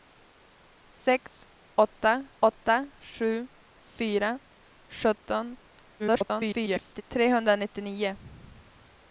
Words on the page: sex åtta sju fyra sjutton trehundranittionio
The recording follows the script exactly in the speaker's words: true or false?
false